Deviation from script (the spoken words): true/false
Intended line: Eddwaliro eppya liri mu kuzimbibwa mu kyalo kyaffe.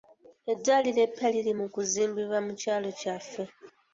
false